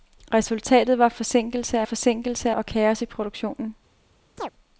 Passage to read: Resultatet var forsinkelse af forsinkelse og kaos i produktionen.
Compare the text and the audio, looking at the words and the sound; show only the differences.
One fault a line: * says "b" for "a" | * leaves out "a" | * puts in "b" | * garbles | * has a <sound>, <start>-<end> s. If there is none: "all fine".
* has a chirp, 4.4-4.5 s